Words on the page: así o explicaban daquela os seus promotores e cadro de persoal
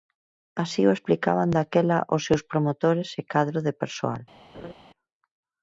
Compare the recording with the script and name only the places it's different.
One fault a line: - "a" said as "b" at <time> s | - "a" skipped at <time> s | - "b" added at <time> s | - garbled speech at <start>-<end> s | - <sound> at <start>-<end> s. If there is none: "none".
- laugh at 4.5-4.7 s